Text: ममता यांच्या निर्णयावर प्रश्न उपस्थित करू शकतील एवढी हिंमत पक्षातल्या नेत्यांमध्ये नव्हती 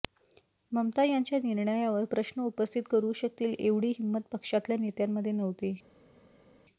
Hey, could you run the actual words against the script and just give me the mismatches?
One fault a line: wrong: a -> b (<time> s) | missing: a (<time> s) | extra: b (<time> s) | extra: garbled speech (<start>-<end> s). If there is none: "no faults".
no faults